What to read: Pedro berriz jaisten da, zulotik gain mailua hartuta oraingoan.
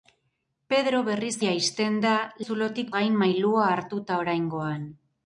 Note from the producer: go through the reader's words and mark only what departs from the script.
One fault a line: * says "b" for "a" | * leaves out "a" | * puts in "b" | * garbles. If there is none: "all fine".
all fine